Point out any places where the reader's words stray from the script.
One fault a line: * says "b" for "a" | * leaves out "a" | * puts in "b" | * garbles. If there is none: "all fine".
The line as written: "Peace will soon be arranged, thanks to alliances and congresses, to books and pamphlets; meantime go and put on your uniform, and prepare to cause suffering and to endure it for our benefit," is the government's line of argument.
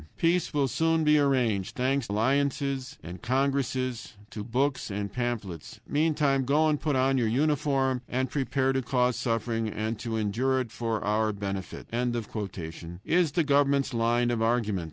* leaves out "to"